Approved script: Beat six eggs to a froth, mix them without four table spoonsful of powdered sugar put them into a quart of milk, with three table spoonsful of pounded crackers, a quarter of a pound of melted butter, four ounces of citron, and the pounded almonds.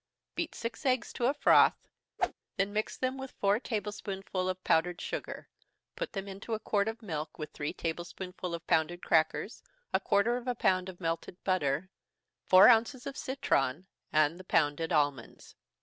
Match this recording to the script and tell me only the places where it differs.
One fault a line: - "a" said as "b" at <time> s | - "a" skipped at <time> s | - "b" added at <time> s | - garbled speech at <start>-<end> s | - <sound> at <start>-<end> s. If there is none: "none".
- whoosh at 2.2-2.3 s
- "then" added at 2.6 s
- "without" said as "with" at 3.2 s